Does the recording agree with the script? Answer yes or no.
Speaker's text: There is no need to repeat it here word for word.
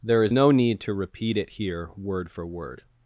yes